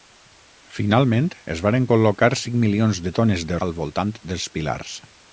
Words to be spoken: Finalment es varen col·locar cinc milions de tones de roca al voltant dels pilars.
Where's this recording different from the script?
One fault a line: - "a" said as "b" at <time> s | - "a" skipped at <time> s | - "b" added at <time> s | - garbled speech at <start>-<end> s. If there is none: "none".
- "roca" skipped at 3.6 s